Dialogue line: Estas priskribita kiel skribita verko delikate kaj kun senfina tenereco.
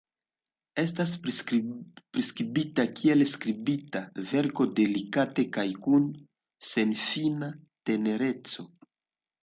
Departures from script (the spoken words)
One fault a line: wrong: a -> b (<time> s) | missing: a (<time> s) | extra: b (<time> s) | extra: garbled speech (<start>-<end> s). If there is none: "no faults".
no faults